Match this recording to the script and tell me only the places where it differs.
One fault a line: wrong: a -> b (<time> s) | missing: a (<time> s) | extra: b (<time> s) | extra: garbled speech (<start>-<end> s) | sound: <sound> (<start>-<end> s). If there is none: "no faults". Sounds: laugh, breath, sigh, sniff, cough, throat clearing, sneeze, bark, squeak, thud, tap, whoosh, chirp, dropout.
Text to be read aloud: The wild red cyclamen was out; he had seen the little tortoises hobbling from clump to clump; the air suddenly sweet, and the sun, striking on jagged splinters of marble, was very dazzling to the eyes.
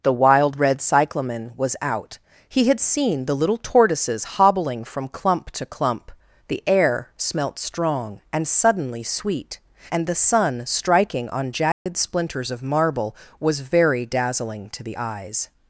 extra: smelt strong and (7.2 s)
sound: dropout (11.7-11.9 s)